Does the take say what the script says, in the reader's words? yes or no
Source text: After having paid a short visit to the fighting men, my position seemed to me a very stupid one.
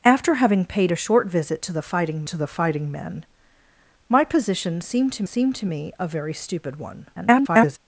no